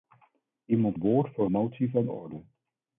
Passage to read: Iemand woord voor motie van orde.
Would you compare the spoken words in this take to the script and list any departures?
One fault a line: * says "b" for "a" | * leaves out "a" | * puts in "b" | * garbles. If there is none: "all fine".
all fine